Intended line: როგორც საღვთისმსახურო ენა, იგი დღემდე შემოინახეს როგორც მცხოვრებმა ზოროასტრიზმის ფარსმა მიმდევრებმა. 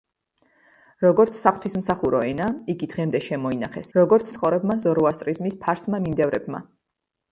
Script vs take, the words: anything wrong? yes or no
no